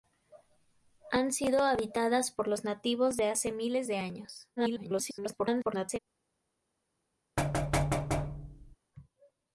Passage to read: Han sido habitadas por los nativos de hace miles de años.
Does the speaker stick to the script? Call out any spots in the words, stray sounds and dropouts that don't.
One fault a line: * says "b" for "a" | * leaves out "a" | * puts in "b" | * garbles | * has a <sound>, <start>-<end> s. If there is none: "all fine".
* garbles
* has a thud, 7.4-8.8 s